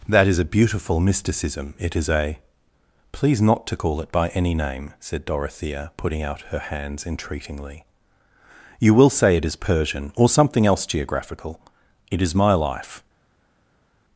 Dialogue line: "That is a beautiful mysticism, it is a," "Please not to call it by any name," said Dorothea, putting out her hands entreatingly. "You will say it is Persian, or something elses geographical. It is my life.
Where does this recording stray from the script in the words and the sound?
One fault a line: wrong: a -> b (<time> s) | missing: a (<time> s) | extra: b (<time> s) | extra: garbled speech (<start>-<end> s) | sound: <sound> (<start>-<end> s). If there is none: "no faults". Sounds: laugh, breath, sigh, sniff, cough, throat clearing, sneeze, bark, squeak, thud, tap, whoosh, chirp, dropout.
wrong: elses -> else (10.7 s)